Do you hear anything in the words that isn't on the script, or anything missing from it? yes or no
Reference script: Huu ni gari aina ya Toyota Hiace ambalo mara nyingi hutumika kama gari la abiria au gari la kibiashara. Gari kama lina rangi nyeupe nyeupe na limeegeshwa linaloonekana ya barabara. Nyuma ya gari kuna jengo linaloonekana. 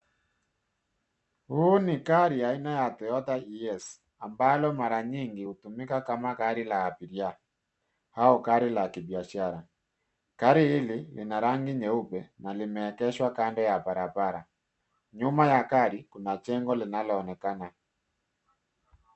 yes